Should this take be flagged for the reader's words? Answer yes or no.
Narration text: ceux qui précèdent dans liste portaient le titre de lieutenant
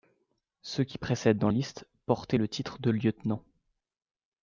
no